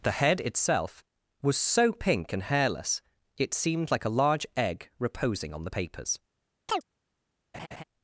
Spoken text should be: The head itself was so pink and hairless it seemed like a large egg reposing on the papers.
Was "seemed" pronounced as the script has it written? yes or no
yes